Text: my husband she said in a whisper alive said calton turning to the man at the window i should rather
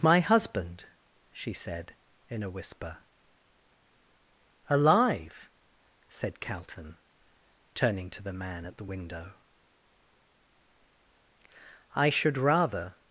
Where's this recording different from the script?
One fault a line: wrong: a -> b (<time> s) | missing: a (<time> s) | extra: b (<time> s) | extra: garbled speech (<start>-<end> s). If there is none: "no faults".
no faults